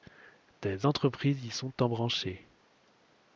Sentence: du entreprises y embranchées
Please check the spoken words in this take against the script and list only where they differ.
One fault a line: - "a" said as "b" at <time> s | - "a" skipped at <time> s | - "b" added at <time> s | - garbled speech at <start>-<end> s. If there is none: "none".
- "du" said as "des" at 0.6 s
- "sont" added at 1.5 s